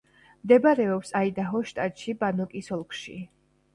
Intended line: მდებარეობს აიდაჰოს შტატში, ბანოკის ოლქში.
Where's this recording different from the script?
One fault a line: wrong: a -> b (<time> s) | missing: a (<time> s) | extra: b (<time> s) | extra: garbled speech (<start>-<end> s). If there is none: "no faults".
no faults